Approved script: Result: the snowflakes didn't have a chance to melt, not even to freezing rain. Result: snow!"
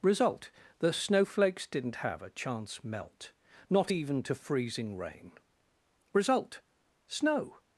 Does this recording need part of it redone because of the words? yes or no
yes